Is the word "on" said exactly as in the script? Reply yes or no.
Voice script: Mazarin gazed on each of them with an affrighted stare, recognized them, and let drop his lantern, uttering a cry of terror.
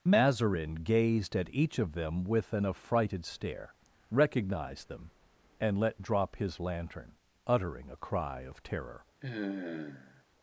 no